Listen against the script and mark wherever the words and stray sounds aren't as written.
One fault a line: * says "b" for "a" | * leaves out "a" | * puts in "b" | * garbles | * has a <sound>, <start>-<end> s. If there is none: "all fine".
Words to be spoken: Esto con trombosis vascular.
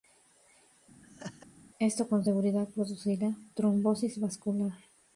* has a laugh, 1.0-1.5 s
* puts in "seguridad producirá"